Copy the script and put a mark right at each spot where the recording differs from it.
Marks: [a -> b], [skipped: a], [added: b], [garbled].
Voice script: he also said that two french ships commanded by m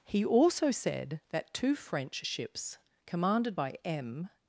he also said that two french ships commanded by m